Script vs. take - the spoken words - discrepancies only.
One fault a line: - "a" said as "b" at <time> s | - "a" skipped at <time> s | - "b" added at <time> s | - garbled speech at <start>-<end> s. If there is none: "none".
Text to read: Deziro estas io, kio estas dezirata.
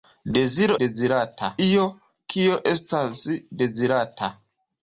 - "estas" said as "dezirata" at 0.8 s